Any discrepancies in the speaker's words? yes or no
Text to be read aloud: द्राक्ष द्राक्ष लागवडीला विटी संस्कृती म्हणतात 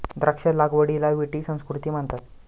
yes